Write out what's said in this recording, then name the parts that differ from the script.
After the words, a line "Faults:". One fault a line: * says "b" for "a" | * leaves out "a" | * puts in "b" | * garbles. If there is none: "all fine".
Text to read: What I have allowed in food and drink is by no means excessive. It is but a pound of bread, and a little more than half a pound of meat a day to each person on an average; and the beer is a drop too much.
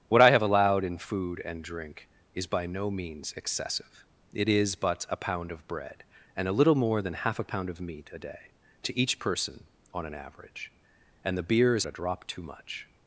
What I have allowed in food and drink is by no means excessive. It is but a pound of bread, and a little more than half a pound of meat a day to each person on an average; and the beer is a drop too much.
Faults:
all fine